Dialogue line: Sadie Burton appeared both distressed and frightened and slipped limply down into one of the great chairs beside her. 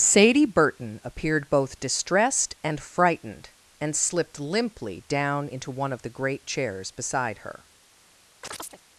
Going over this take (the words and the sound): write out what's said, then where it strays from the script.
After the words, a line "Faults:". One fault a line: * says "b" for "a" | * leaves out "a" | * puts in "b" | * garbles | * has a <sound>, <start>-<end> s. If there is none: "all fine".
Sadie Burton appeared both distressed and frightened and slipped limply down into one of the great chairs beside her.
Faults:
* has a chirp, 8.4-8.8 s